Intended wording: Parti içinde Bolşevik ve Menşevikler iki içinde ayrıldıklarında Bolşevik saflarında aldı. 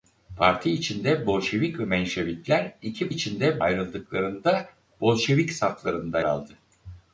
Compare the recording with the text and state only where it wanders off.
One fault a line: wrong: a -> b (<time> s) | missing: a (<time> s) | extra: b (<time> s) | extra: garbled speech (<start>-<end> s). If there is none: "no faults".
no faults